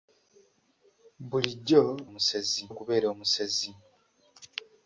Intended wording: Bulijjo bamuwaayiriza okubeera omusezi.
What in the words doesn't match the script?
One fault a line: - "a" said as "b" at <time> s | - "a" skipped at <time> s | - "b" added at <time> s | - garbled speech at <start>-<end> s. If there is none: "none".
- "bamuwaayiriza" said as "omusezi" at 2.1 s